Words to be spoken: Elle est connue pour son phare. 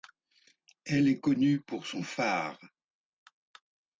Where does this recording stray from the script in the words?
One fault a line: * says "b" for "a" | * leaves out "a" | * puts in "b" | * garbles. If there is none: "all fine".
all fine